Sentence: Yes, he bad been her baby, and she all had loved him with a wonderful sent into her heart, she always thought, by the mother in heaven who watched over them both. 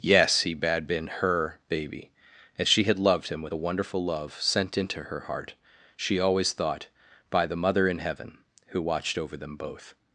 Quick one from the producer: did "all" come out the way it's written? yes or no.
no